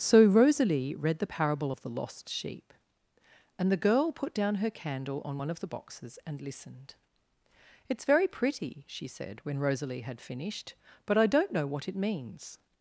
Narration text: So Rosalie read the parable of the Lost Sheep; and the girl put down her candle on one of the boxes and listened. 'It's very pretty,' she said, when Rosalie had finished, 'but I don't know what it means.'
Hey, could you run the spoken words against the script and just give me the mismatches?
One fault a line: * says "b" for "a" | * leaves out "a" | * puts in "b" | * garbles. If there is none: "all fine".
all fine